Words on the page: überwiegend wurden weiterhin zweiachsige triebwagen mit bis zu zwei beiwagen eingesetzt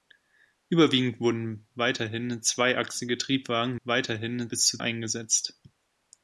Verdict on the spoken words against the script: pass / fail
fail